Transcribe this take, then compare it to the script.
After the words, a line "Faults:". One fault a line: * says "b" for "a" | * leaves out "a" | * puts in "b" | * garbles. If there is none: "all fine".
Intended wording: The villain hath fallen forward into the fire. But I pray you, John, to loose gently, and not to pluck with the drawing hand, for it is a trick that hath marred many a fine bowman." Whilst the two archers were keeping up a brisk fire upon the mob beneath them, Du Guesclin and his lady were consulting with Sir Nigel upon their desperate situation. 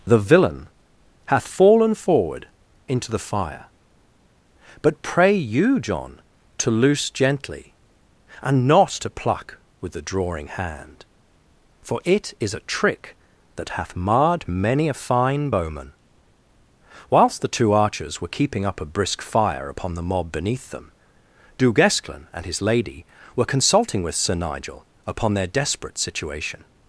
The villain hath fallen forward into the fire. But pray you, John, to loose gently, and not to pluck with the drawing hand, for it is a trick that hath marred many a fine bowman." Whilst the two archers were keeping up a brisk fire upon the mob beneath them, Du Guesclin and his lady were consulting with Sir Nigel upon their desperate situation.
Faults:
* leaves out "I"